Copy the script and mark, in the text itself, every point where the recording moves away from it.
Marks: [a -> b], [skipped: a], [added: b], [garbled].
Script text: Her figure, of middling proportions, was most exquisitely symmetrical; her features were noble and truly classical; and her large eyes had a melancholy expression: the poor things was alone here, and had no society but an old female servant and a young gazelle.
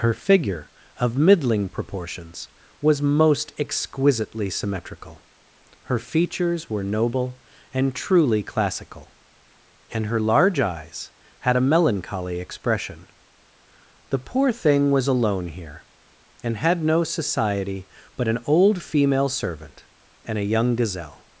Her figure, of middling proportions, was most exquisitely symmetrical; her features were noble and truly classical; and her large eyes had a melancholy expression: the poor [things -> thing] was alone here, and had no society but an old female servant and a young gazelle.